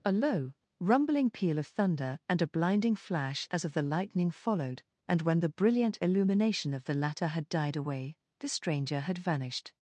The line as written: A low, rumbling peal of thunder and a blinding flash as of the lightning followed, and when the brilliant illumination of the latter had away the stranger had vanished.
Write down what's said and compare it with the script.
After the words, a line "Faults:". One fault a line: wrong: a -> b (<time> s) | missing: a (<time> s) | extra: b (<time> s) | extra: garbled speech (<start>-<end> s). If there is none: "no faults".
A low, rumbling peal of thunder and a blinding flash as of the lightning followed, and when the brilliant illumination of the latter had died away the stranger had vanished.
Faults:
extra: died (7.5 s)